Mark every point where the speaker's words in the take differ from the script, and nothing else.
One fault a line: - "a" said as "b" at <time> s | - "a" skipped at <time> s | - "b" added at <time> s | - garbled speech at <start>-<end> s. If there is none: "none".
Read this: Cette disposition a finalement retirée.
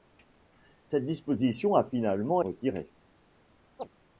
none